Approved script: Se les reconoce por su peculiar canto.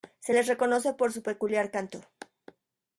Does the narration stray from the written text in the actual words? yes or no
no